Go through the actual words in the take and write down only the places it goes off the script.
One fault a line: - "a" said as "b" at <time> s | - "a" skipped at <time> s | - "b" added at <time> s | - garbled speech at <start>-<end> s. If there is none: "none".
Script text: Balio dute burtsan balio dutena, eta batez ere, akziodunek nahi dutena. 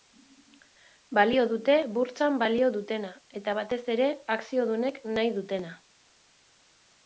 none